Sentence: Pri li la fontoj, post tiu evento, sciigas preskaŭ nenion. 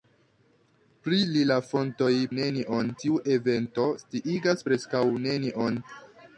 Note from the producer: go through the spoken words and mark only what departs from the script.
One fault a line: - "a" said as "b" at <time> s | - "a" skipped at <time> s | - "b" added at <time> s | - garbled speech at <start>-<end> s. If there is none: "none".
- "post" said as "nenion" at 2.4 s